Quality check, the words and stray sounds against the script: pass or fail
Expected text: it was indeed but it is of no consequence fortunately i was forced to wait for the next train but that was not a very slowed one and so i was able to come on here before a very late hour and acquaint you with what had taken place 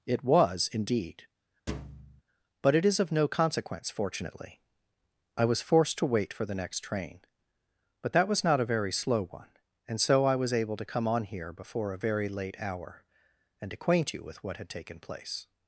fail